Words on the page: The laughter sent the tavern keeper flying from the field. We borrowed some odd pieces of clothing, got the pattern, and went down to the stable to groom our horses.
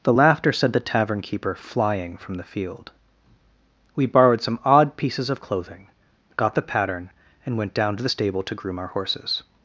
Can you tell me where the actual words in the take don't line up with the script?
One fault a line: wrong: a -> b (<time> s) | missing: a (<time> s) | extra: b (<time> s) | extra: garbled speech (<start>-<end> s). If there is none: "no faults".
no faults